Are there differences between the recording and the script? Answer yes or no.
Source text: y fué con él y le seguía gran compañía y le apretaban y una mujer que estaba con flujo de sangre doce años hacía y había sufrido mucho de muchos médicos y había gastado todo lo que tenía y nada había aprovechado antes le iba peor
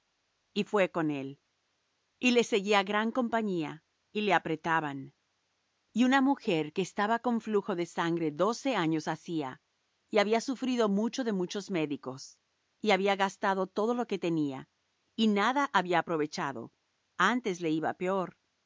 no